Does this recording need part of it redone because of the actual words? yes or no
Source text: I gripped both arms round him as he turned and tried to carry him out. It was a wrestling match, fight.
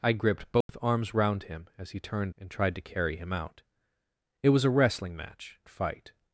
no